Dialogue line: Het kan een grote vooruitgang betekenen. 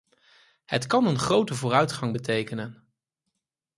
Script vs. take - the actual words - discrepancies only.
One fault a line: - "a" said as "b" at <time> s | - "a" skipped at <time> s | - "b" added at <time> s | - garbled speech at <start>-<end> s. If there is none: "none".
none